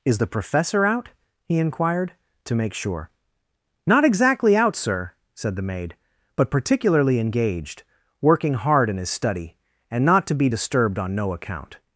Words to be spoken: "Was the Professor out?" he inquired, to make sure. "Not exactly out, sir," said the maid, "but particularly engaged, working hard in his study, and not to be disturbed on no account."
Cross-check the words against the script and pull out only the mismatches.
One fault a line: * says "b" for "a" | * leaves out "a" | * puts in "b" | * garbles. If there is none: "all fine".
* says "Is" for "Was"